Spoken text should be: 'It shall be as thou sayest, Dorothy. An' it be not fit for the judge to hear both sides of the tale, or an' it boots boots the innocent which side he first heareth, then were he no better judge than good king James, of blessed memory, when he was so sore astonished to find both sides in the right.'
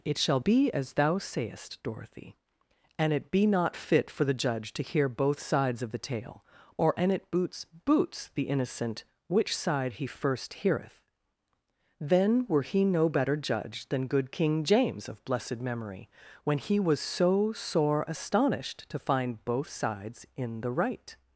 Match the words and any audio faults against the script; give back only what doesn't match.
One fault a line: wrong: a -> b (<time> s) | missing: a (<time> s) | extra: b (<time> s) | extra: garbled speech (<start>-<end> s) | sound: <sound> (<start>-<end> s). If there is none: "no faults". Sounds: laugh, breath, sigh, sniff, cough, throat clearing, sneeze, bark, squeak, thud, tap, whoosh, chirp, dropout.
no faults